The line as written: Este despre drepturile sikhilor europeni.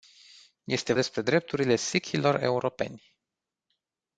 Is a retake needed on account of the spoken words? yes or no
no